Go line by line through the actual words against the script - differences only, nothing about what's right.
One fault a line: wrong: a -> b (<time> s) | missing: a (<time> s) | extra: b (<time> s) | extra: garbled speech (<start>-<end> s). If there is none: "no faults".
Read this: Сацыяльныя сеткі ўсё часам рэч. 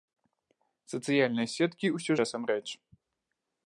no faults